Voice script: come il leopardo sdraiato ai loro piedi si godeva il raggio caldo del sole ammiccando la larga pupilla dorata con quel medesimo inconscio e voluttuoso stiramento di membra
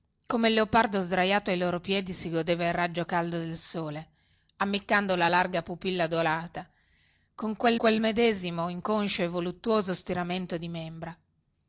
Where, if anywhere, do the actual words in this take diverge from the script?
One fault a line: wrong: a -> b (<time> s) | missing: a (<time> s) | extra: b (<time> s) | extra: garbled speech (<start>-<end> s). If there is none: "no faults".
extra: quel (7.8 s)